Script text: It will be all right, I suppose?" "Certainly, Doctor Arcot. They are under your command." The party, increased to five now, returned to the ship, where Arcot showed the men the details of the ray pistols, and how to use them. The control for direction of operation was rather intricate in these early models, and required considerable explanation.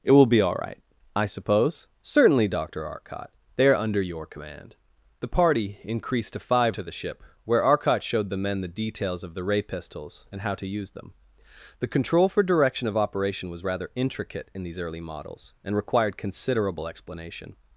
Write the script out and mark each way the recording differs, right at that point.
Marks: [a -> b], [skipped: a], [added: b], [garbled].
It will be all right, I suppose?" "Certainly, Doctor Arcot. They are under your command." The party, increased to five [skipped: now, returned] to the ship, where Arcot showed the men the details of the ray pistols, and how to use them. The control for direction of operation was rather intricate in these early models, and required considerable explanation.